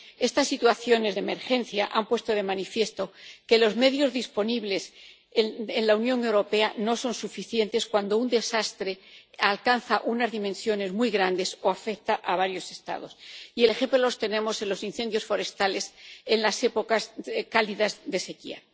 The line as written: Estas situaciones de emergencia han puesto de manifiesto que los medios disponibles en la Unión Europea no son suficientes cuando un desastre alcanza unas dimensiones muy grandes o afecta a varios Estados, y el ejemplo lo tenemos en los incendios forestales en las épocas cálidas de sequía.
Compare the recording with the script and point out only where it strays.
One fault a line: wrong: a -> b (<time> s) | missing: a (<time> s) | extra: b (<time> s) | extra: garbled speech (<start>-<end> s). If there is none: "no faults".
no faults